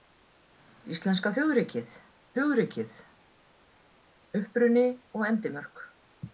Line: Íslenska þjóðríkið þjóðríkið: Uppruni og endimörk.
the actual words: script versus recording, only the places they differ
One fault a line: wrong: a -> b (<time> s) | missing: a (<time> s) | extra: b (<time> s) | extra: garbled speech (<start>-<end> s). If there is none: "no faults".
no faults